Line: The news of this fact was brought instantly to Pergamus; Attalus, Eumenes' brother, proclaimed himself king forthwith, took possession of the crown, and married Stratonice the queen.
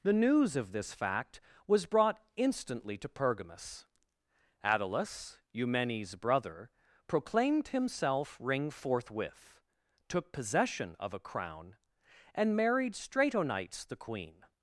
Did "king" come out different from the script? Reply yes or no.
yes